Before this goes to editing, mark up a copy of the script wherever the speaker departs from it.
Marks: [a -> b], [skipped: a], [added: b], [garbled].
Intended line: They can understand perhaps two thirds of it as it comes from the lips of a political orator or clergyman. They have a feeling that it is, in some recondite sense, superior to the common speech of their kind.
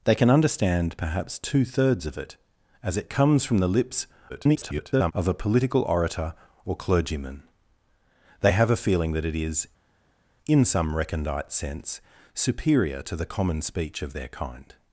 They can understand perhaps two thirds of it as it comes from the lips [garbled] of a political orator or clergyman. They have a feeling that it is, in some recondite sense, superior to the common speech of their kind.